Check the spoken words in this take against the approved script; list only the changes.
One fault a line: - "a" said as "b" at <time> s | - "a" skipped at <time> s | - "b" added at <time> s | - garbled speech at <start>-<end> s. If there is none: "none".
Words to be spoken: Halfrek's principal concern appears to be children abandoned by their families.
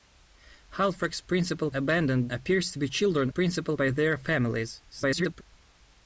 - "concern" said as "abandoned" at 1.7 s
- "abandoned" said as "principal" at 3.3 s
- garbled speech at 4.9-5.4 s